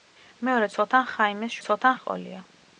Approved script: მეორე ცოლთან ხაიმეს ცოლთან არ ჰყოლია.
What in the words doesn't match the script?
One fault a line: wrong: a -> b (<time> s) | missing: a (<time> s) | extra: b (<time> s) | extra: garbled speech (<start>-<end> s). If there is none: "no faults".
no faults